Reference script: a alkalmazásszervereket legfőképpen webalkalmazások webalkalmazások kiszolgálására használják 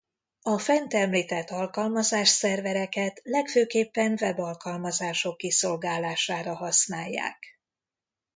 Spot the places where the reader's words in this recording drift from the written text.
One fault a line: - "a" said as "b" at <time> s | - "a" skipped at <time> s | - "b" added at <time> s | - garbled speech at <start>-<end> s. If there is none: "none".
- "fent említett" added at 0.6 s
- "webalkalmazások" skipped at 5.4 s